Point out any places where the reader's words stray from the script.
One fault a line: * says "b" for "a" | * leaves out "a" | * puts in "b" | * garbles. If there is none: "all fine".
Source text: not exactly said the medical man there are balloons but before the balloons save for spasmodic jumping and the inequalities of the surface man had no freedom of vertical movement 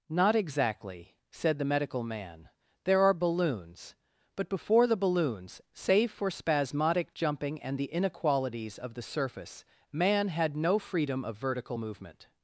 all fine